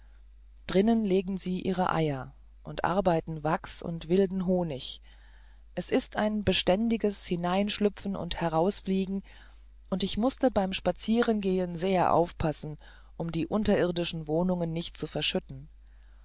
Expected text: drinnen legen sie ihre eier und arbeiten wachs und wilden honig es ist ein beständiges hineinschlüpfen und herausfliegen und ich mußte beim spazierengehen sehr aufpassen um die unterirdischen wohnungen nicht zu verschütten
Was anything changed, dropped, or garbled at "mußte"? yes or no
no